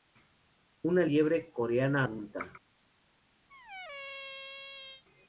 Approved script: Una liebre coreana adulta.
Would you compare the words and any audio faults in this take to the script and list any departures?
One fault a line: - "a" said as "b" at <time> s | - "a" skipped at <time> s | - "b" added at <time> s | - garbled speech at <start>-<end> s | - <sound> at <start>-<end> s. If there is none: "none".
- squeak at 3.5-5.0 s